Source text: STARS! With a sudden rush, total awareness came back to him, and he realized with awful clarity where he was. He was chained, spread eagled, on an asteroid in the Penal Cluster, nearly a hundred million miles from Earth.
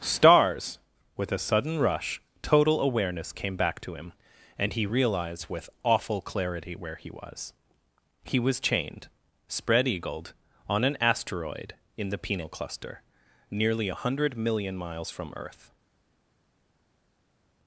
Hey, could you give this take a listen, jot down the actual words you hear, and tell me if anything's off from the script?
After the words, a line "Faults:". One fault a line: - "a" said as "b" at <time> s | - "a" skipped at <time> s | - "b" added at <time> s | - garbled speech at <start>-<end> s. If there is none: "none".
STARS! With a sudden rush, total awareness came back to him, and he realized with awful clarity where he was. He was chained, spread eagled, on an asteroid in the Penal Cluster, nearly a hundred million miles from Earth.
Faults:
none